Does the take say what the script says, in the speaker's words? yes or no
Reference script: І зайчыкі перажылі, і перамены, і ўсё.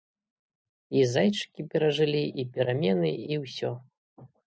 yes